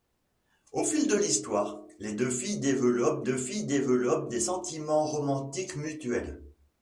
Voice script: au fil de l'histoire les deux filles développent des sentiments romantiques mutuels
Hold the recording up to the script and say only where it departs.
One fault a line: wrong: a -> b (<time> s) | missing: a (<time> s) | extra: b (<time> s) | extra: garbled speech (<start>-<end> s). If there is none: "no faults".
extra: deux filles développent (3.2 s)